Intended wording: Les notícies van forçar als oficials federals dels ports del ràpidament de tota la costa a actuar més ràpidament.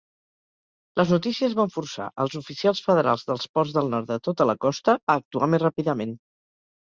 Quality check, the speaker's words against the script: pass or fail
fail